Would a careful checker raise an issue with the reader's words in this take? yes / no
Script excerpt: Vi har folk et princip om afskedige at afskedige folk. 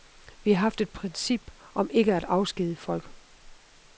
yes